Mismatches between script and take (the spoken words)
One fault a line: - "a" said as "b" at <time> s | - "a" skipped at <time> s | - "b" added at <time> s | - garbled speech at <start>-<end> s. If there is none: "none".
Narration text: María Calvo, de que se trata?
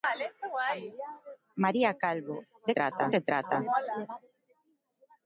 - "que" said as "trata" at 2.8 s